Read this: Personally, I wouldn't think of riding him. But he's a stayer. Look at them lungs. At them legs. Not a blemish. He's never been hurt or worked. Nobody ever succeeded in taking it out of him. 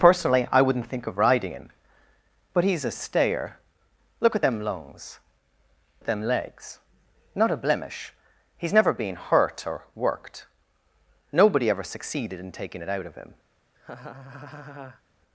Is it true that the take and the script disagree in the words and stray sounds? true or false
true